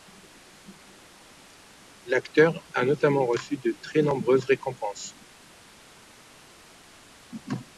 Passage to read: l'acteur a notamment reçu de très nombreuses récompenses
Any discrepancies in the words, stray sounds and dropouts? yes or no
no